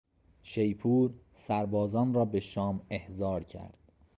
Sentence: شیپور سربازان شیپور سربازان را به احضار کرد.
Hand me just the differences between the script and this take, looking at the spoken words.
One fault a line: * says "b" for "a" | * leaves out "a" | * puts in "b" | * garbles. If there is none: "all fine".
* leaves out "شیپور سربازان"
* puts in "شام"